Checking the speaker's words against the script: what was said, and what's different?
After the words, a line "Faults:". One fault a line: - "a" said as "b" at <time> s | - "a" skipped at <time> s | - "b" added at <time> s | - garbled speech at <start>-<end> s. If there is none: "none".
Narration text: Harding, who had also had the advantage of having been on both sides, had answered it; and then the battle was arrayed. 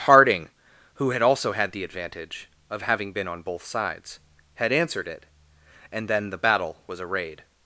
Harding, who had also had the advantage of having been on both sides, had answered it; and then the battle was arrayed.
Faults:
none